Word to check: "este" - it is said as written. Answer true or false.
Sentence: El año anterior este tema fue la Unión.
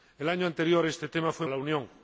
true